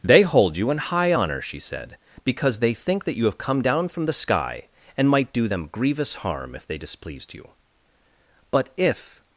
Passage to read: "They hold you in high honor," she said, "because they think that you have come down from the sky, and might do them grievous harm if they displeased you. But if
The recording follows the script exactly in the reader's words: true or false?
true